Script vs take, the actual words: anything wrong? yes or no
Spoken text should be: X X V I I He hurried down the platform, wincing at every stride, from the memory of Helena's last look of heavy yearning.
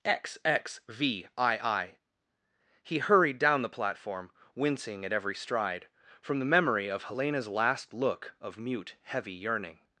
yes